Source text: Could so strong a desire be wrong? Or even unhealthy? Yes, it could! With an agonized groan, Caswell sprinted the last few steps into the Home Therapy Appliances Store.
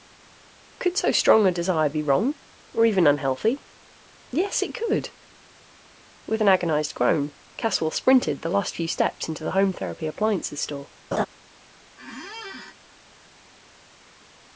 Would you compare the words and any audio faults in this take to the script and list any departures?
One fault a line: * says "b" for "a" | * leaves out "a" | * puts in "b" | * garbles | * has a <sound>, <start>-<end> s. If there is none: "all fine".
* has a laugh, 11.1-11.3 s
* has a squeak, 12.0-12.8 s